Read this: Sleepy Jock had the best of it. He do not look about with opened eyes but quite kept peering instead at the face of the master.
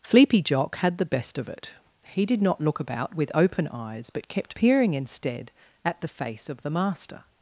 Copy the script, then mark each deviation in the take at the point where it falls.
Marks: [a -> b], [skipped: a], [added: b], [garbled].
Sleepy Jock had the best of it. He [do -> did] not look about with [opened -> open] eyes but [skipped: quite] kept peering instead at the face of the master.